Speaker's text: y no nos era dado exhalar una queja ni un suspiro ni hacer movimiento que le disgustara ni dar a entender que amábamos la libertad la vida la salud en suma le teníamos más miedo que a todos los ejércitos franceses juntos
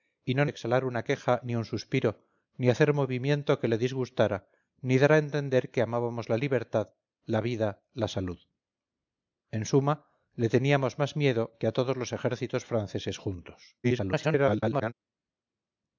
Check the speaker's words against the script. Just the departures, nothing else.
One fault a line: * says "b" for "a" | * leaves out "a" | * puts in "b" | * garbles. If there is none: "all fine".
* leaves out "nos era dado"
* garbles